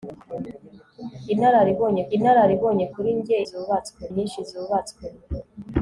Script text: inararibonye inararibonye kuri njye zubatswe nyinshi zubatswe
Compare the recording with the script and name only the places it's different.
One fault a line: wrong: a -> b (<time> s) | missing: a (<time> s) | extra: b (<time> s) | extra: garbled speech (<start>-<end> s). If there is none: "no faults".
no faults